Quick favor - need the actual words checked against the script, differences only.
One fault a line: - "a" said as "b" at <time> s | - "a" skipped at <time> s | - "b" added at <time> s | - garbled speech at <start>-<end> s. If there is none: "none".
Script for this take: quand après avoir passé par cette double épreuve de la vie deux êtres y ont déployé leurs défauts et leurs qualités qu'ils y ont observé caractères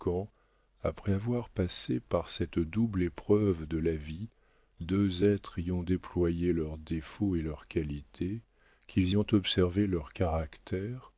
- "leurs" added at 9.9 s